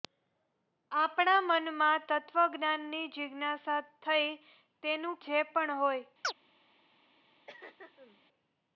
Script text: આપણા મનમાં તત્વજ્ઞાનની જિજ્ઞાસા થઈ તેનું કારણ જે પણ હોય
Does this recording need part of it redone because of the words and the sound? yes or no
yes